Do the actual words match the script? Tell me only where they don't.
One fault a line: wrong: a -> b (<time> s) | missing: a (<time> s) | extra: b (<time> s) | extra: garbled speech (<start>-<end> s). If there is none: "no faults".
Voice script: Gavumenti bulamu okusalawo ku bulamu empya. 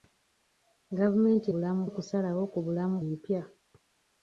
no faults